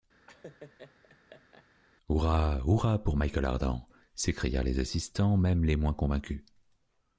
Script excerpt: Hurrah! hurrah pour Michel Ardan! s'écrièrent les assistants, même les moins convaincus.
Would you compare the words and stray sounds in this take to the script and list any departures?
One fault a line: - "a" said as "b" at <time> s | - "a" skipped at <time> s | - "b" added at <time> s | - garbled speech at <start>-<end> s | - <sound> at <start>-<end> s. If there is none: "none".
- laugh at 0.3-1.7 s